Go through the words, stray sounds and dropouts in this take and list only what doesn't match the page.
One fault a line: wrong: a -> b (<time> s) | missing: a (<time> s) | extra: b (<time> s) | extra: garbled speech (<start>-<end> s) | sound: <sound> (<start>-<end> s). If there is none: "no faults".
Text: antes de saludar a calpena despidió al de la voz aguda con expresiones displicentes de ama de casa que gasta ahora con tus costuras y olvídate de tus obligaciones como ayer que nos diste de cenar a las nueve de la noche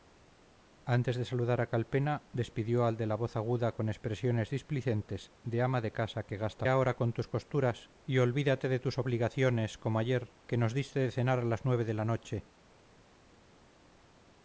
no faults